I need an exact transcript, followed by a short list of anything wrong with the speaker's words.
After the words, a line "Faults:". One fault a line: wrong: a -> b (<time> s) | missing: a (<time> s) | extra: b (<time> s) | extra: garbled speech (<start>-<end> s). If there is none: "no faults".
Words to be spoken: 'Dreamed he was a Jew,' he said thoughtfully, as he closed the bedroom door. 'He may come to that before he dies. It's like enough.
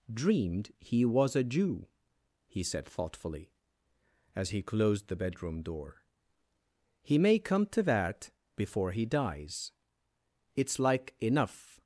'Dreamed he was a Jew,' he said thoughtfully, as he closed the bedroom door. 'He may come to that before he dies. It's like enough.
Faults:
no faults